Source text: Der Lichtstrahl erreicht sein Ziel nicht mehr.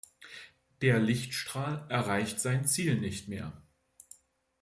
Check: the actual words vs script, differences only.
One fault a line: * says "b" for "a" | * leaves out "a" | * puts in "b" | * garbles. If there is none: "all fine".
all fine